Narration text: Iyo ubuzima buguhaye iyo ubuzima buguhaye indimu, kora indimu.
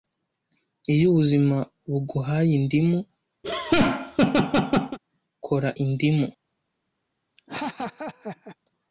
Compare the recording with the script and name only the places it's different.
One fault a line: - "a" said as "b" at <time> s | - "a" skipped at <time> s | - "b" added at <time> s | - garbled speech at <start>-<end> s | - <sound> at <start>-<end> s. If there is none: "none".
- "iyo ubuzima buguhaye" skipped at 2.5 s
- laugh at 3.4-5.0 s
- laugh at 7.4-8.6 s